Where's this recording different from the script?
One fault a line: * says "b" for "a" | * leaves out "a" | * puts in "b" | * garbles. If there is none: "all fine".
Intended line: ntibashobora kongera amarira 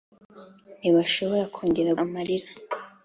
all fine